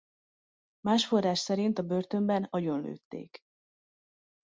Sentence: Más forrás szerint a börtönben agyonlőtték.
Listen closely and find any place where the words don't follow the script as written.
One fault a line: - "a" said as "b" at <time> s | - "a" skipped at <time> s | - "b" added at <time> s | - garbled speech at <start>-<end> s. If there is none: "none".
none